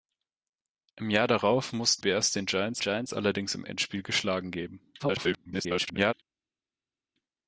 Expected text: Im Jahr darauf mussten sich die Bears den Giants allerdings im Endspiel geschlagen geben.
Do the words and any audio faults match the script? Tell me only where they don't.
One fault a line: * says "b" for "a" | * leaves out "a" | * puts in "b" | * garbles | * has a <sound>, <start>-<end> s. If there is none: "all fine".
* leaves out "sich die"
* puts in "Giants"
* garbles